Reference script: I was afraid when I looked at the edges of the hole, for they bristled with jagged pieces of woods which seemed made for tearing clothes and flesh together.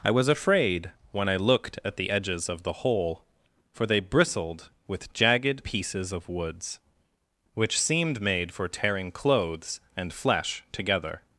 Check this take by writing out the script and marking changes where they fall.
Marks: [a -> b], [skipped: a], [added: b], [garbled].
I was afraid when I looked at the edges of the hole, for they bristled with jagged pieces of woods which seemed made for tearing clothes and flesh together.